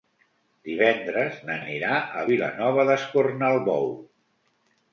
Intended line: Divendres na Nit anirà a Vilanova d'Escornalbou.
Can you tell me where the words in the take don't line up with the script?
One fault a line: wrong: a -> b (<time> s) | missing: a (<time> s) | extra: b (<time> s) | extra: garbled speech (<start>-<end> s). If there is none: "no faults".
missing: Nit (1.6 s)